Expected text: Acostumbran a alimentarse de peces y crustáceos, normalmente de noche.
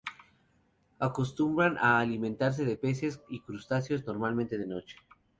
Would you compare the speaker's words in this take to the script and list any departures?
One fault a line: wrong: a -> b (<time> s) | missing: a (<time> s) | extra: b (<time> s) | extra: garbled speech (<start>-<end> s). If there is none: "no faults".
no faults